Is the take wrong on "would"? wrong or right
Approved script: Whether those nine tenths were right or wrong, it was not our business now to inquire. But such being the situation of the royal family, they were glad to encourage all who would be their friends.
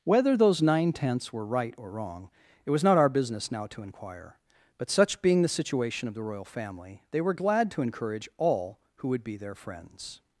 right